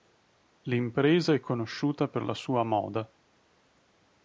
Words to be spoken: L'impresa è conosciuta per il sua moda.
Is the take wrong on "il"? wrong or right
wrong